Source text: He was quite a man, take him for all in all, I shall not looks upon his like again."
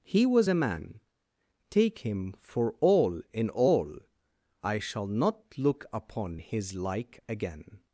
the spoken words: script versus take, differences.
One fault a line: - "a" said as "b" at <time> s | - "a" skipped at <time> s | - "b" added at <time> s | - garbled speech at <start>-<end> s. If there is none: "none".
- "quite" skipped at 0.5 s
- "looks" said as "look" at 5.6 s